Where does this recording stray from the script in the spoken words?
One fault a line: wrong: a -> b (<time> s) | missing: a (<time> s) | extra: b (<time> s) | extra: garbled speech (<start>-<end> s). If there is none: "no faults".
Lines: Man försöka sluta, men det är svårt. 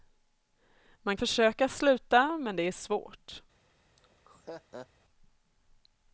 no faults